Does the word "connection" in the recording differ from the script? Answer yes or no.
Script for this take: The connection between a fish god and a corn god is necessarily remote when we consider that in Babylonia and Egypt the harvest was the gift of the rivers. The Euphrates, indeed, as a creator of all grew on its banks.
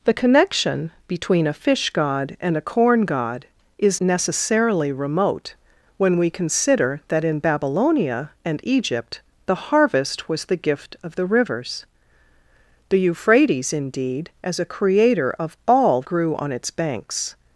no